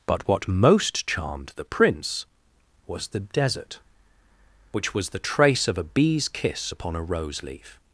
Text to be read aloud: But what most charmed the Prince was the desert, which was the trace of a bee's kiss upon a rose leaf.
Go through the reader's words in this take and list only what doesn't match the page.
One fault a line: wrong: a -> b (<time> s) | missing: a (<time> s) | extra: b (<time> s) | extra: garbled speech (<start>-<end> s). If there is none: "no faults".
no faults